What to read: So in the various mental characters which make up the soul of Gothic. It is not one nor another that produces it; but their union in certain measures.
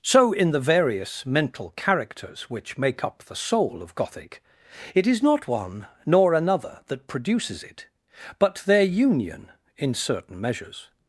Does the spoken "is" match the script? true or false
true